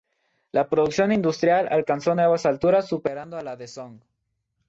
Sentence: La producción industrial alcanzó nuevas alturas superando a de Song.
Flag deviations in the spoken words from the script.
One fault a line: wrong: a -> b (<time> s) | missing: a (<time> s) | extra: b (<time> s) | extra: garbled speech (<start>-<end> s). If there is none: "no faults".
extra: la (3.4 s)